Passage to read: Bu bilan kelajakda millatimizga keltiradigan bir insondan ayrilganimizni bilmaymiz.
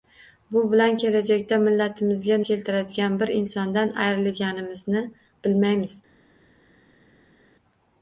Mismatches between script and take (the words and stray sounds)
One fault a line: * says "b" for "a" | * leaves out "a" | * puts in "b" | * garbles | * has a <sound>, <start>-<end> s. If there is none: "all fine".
all fine